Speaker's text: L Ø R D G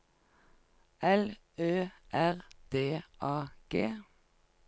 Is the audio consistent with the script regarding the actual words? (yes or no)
no